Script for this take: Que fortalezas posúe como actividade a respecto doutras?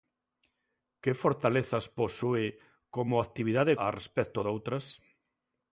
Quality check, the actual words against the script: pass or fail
pass